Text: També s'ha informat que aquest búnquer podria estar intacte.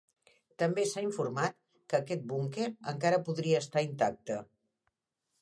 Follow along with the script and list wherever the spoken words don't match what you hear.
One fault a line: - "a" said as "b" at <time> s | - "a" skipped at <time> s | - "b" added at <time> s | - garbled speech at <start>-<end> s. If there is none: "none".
- "encara" added at 2.9 s